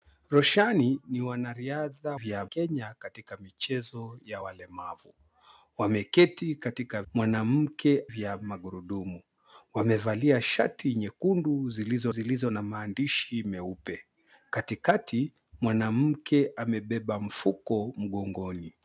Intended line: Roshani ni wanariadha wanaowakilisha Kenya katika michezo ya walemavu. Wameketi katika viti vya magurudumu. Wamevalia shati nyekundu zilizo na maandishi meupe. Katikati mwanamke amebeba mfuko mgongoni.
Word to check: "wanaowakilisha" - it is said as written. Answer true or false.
false